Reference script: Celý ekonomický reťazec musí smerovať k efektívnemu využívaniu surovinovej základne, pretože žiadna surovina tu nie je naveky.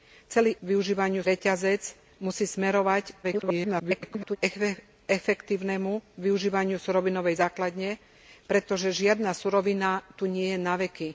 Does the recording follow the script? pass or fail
fail